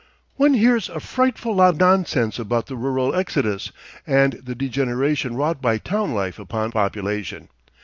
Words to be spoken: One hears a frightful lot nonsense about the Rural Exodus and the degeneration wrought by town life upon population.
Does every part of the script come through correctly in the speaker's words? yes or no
yes